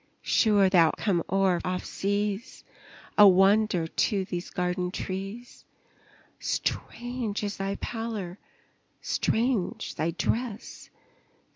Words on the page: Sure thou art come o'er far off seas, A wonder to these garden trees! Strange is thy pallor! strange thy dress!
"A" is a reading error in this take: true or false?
false